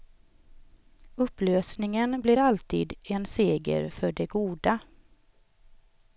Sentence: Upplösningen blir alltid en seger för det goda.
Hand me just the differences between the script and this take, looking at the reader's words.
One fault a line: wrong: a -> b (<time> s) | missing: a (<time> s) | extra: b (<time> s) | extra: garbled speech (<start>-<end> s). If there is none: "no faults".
no faults